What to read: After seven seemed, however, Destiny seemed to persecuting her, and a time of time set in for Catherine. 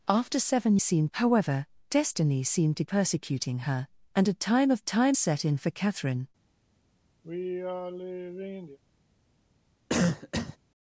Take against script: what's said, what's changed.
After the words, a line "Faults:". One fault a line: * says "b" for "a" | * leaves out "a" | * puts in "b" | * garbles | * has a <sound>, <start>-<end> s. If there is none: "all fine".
After seven seemed, however, Destiny seemed to persecuting her, and a time of time set in for Catherine.
Faults:
* has a sigh, 7.2-8.8 s
* has a cough, 9.9-10.6 s